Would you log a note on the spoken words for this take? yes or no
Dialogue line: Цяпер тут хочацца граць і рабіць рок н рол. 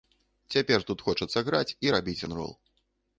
yes